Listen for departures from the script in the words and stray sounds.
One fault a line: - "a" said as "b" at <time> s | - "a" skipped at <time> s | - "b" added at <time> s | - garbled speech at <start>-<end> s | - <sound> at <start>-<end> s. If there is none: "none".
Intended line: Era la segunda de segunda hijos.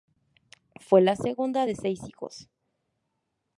- "Era" said as "Fue" at 0.8 s
- "segunda" said as "seis" at 1.7 s